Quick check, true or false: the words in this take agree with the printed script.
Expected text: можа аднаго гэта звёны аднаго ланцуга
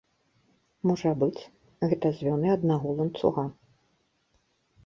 false